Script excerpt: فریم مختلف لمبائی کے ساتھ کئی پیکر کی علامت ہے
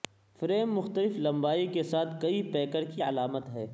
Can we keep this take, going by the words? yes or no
yes